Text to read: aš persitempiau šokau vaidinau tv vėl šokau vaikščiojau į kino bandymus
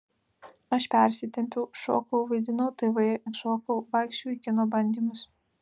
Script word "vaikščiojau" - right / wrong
right